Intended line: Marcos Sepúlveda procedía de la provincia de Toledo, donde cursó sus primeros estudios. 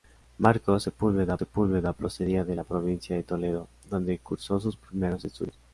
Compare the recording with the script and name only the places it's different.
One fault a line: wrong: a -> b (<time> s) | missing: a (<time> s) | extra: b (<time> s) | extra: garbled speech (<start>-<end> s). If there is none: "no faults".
extra: Sepúlveda (1.4 s)